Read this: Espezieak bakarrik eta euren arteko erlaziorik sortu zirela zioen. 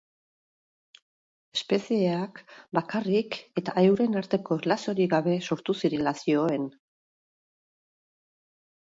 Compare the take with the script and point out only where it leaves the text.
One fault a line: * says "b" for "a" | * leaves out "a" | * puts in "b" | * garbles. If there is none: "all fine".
* puts in "gabe"